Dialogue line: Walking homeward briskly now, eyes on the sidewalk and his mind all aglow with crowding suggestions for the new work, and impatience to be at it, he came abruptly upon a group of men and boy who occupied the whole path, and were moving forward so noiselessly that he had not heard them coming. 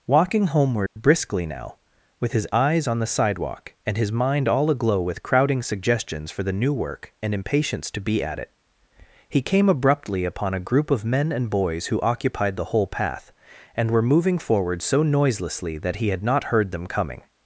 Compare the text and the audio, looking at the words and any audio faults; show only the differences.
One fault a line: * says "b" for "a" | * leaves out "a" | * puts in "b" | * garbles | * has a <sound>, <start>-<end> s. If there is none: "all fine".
* has a dropout, 0.9-1.0 s
* puts in "with his"
* says "boys" for "boy"